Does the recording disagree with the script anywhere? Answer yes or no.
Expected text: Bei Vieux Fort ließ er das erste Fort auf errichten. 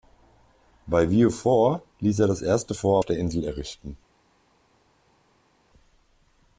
yes